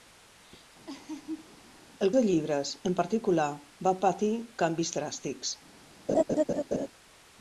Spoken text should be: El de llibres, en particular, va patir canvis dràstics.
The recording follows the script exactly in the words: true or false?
true